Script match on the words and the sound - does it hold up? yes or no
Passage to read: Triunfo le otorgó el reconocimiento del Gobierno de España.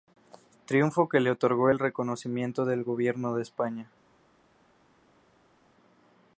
no